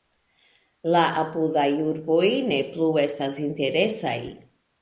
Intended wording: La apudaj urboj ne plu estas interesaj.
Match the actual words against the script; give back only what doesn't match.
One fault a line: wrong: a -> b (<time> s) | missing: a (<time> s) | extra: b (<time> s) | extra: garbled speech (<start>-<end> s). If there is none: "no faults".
no faults